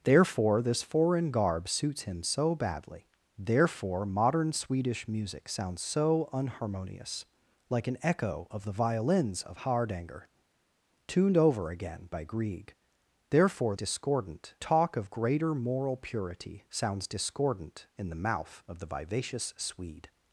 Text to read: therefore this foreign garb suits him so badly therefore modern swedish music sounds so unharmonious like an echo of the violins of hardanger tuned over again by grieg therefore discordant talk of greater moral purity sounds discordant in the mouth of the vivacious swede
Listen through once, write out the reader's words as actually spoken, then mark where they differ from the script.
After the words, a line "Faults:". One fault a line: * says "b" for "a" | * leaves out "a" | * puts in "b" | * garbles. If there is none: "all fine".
therefore this foreign garb suits him so badly therefore modern swedish music sounds so unharmonious like an echo of the violins of hardanger tuned over again by grieg therefore discordant talk of greater moral purity sounds discordant in the mouth of the vivacious swede
Faults:
all fine